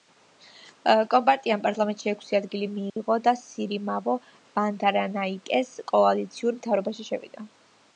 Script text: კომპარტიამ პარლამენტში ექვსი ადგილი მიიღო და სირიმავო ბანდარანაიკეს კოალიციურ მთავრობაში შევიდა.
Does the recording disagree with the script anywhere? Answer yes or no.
no